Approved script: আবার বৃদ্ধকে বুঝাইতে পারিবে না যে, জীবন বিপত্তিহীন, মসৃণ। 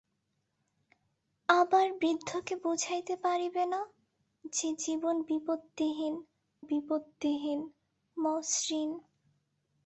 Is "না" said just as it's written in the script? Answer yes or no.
yes